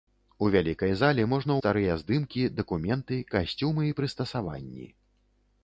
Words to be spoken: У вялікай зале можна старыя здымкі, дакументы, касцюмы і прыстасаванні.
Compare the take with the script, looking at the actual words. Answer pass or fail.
pass